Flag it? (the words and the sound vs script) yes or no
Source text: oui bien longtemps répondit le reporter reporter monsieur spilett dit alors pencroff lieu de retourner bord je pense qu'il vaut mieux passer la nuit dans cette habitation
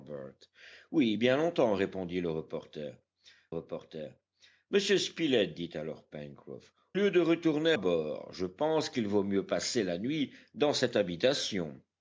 no